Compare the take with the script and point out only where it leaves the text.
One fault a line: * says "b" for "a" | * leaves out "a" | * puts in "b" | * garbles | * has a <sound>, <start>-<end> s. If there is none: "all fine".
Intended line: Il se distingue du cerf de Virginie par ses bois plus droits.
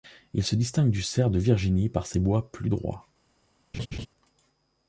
* has a laugh, 3.7-4.1 s